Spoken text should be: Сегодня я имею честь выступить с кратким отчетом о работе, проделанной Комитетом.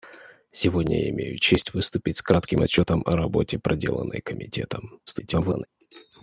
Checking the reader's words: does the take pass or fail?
fail